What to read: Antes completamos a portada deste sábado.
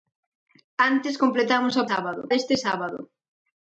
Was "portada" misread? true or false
true